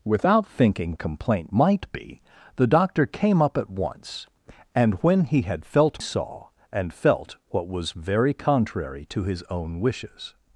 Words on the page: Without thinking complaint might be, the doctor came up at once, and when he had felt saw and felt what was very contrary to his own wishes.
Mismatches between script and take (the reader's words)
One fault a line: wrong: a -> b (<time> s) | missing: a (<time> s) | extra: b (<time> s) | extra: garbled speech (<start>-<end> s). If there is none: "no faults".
no faults